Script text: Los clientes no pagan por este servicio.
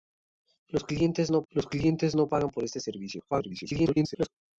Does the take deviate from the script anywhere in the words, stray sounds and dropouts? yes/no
yes